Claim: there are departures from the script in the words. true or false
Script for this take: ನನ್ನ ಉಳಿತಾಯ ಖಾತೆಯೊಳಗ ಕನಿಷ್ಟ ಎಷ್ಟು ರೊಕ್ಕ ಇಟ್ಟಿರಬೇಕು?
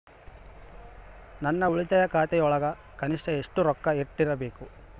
false